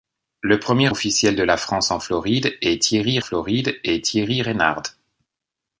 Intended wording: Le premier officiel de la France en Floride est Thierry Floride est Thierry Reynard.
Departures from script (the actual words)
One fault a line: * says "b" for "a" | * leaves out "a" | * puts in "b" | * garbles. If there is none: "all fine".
all fine